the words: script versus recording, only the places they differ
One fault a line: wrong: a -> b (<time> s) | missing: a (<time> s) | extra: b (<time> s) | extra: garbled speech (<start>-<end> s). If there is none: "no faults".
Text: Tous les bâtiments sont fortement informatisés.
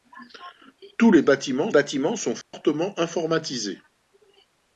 extra: bâtiments (1.7 s)